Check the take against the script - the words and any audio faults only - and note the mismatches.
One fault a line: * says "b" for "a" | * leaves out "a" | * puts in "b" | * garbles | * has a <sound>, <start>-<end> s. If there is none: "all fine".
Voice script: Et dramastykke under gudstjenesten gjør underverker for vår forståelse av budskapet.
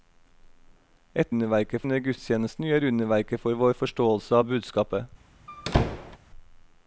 * says "underverker" for "dramastykke"
* has a squeak, 5.5-6.2 s